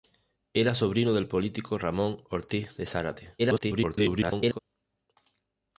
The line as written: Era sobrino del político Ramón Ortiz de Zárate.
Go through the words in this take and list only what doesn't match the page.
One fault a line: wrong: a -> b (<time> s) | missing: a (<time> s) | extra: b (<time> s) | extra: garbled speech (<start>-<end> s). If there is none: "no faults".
extra: garbled speech (3.4-4.6 s)